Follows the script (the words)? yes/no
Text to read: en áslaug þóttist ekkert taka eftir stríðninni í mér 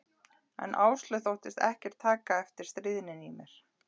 yes